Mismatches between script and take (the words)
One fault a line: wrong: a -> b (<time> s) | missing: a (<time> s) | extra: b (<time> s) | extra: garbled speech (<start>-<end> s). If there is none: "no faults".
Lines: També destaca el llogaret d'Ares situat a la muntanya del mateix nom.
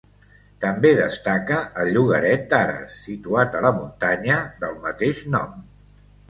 no faults